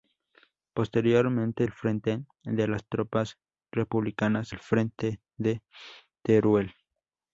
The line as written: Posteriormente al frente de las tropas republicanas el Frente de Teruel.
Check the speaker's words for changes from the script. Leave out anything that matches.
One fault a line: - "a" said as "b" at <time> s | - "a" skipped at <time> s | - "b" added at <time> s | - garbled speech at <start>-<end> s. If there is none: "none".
none